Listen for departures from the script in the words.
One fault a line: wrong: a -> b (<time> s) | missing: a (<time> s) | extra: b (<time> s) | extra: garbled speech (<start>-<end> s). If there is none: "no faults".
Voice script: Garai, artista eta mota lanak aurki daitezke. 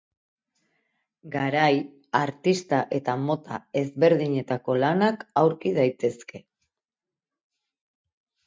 extra: ezberdinetako (3.8 s)